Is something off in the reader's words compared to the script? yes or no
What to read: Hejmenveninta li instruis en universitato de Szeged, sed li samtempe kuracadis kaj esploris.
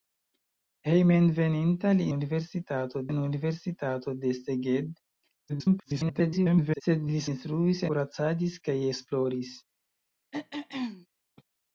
yes